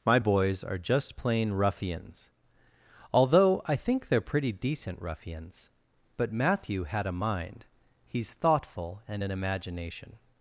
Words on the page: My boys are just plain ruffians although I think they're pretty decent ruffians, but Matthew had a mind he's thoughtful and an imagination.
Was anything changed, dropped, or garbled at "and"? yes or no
no